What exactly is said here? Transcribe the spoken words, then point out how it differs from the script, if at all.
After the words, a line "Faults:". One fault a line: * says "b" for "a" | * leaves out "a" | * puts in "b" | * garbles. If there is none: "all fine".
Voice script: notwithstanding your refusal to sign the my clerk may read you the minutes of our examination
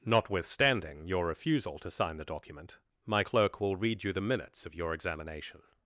notwithstanding your refusal to sign the document my clerk will read you the minutes of your examination
Faults:
* puts in "document"
* says "will" for "may"
* says "your" for "our"